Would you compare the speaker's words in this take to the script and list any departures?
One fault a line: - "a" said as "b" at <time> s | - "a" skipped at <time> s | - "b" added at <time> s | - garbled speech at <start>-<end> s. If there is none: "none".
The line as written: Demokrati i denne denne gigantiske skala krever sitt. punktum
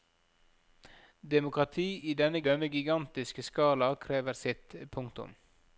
none